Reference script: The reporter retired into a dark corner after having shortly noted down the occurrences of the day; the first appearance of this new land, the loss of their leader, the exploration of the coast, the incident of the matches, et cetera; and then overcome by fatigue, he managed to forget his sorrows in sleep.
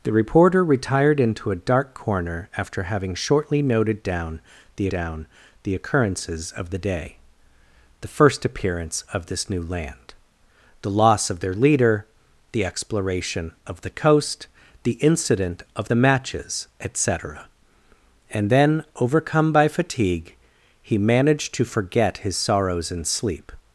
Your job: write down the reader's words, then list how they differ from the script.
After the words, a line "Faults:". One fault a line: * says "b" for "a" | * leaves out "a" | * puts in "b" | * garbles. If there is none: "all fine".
The reporter retired into a dark corner after having shortly noted down the down the occurrences of the day; the first appearance of this new land, the loss of their leader, the exploration of the coast, the incident of the matches, et cetera; and then overcome by fatigue, he managed to forget his sorrows in sleep.
Faults:
* puts in "down the"